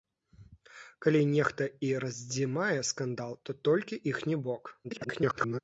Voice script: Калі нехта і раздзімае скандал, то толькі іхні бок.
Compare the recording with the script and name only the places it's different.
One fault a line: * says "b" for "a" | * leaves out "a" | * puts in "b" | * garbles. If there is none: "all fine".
* garbles